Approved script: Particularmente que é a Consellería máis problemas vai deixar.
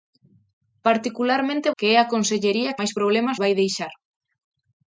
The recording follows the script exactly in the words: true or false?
true